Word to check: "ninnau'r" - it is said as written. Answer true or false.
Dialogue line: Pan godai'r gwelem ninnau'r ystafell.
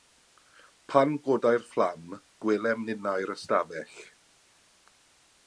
true